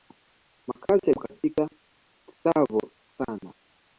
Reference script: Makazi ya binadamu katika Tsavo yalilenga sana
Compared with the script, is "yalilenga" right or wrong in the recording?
wrong